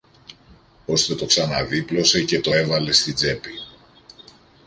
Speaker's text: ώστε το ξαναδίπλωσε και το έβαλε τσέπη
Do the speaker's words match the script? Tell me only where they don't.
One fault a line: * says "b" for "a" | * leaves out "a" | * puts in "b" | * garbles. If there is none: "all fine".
* puts in "στην"